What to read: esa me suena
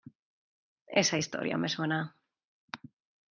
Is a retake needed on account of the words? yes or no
yes